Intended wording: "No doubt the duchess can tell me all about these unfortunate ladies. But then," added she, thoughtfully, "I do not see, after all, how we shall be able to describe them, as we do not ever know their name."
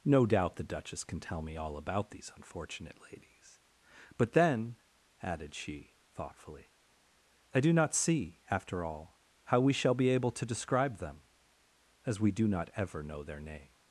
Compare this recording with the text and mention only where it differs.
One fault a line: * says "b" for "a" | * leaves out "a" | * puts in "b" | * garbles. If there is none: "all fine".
all fine